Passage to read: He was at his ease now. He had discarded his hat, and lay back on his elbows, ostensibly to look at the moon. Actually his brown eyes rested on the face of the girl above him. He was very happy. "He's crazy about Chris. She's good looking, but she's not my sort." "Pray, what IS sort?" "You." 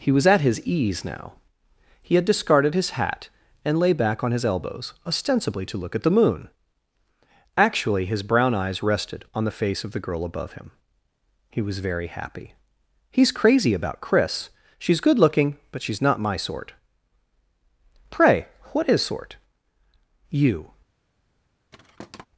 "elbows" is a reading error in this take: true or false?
false